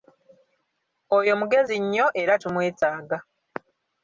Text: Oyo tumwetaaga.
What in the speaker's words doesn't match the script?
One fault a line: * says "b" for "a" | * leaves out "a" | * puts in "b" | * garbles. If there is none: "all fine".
* puts in "mugezi nnyo era"